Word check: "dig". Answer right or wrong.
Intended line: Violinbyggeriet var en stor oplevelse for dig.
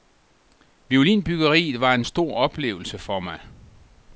wrong